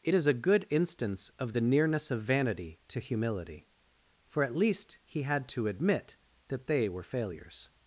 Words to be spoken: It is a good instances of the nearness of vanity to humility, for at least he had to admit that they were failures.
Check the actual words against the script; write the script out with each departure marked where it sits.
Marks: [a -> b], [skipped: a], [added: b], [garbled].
It is a good [instances -> instance] of the nearness of vanity to humility, for at least he had to admit that they were failures.